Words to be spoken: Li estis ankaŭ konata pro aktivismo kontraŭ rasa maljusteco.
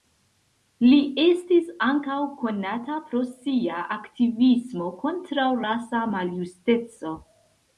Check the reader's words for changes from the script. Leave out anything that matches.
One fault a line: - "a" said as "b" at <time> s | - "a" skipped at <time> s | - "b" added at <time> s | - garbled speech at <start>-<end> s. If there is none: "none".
- "sia" added at 3.3 s